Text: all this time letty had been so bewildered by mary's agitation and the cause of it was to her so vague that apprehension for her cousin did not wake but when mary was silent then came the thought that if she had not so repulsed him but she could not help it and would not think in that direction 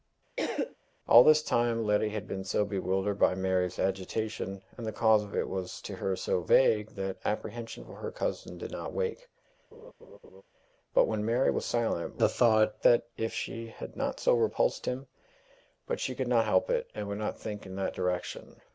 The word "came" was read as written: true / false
false